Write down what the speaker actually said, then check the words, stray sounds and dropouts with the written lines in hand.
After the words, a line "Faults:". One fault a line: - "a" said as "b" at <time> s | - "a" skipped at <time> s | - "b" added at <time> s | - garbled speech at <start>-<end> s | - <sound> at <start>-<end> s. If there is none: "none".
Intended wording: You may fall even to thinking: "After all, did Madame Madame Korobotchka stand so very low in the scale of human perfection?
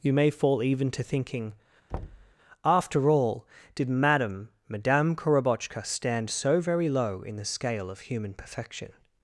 You may fall even to thinking: "After all, did Madame Madame Korobotchka stand so very low in the scale of human perfection?
Faults:
- thud at 1.9-2.3 s